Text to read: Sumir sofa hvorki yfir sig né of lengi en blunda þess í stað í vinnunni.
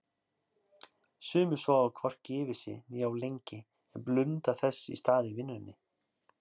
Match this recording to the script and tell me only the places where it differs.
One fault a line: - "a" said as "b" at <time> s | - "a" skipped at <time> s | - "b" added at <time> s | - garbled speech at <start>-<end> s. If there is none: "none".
none